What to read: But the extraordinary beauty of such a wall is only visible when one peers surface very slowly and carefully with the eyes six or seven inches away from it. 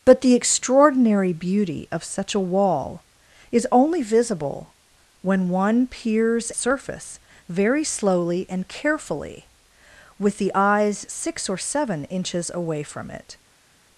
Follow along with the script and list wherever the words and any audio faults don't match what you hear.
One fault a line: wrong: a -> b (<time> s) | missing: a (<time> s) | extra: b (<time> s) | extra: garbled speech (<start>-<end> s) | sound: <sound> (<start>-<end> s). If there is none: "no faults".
no faults